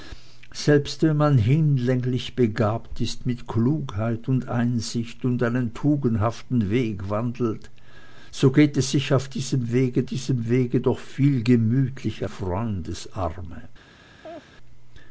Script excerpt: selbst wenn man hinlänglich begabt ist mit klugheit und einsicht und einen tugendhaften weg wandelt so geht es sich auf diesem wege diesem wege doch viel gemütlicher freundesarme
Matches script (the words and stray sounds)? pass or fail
fail